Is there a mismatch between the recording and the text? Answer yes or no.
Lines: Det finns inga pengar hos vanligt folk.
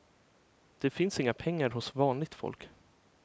no